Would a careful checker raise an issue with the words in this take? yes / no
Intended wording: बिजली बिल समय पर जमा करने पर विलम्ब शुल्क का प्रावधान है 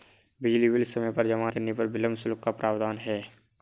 no